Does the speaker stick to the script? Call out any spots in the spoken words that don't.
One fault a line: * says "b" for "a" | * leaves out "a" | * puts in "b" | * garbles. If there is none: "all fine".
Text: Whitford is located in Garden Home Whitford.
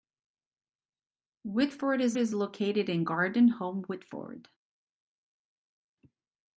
* puts in "is"